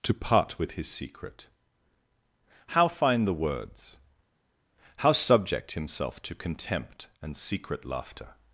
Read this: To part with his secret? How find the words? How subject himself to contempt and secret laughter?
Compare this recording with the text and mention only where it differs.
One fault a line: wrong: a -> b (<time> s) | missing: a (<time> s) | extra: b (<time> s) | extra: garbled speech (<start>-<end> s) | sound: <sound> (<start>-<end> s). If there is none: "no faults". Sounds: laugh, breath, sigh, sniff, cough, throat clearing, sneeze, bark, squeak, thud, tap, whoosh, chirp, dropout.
no faults